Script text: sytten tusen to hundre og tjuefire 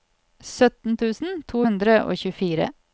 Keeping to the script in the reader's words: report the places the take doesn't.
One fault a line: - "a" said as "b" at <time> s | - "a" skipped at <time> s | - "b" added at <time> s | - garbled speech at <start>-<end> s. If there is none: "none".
none